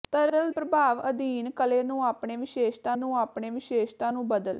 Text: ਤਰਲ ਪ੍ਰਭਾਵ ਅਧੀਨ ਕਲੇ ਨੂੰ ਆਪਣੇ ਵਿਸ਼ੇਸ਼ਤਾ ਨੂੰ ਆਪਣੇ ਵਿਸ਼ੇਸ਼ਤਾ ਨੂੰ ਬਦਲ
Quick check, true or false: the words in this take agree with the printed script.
true